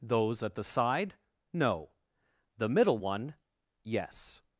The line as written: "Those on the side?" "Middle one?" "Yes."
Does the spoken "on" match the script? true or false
false